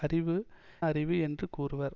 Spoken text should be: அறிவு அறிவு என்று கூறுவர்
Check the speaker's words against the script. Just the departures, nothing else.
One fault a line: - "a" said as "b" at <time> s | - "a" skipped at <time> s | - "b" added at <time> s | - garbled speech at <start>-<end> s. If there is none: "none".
none